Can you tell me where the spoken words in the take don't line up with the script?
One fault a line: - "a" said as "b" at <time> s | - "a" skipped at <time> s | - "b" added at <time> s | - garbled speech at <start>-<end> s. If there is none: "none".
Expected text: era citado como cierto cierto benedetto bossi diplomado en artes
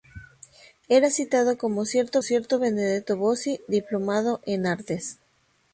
none